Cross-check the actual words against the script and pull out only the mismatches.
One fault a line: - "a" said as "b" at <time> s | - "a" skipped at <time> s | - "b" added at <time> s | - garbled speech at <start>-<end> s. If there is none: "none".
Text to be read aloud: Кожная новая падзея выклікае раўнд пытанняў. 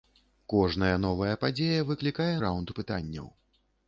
none